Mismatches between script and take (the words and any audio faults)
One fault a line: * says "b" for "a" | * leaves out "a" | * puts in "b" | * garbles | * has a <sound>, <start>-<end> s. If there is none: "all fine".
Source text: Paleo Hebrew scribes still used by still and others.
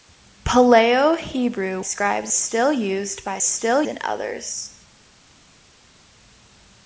all fine